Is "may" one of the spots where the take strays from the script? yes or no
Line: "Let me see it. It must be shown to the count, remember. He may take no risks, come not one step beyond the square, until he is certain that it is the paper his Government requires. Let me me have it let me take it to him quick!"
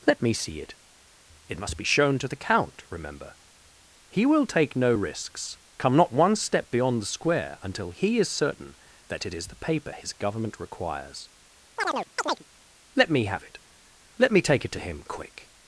yes